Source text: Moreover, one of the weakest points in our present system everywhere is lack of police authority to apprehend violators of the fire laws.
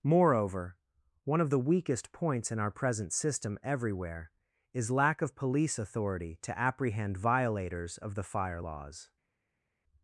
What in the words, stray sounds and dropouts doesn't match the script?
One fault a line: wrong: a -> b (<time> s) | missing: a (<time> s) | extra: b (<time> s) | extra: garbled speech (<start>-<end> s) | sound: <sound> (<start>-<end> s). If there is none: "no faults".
no faults